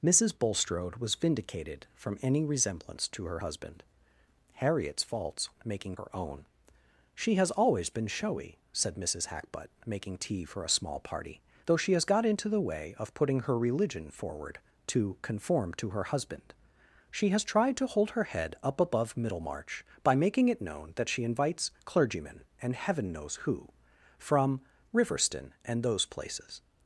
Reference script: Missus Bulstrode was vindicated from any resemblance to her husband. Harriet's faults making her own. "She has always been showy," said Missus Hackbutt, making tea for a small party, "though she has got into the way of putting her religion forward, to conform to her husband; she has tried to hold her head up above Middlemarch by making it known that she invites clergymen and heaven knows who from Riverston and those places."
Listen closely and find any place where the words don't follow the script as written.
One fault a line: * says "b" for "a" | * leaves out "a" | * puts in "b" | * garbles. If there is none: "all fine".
all fine